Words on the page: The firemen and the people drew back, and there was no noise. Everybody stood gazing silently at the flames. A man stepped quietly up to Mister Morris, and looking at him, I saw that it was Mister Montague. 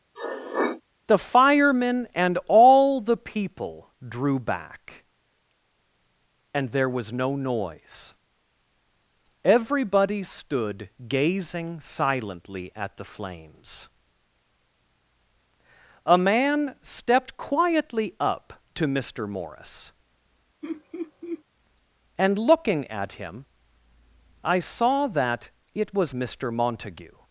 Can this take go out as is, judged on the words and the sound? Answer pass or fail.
fail